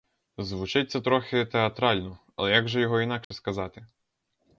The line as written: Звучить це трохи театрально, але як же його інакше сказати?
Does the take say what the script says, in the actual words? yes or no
yes